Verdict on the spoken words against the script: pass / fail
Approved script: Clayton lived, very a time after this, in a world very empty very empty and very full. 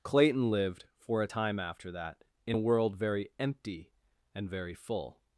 fail